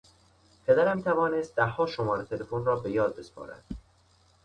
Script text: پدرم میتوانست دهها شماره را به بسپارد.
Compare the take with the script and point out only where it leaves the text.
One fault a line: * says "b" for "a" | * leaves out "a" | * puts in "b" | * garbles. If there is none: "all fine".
* puts in "تلفن"
* puts in "یاد"